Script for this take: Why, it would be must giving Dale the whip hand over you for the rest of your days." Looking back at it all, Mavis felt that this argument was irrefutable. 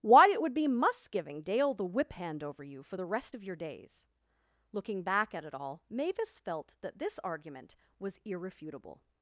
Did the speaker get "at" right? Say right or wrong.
right